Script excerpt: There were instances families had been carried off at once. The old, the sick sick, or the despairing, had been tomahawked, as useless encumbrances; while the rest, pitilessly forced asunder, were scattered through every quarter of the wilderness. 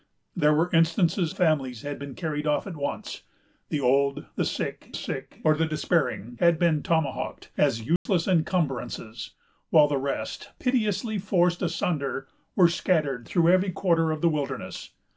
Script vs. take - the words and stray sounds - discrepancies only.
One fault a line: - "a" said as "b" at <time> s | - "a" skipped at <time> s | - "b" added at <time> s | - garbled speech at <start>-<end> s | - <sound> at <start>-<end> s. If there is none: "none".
- dropout at 8.0-8.1 s